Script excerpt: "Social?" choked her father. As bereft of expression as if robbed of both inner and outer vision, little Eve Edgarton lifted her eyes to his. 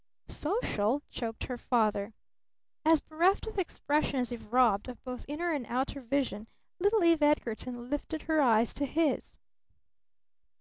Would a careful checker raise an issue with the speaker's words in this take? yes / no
no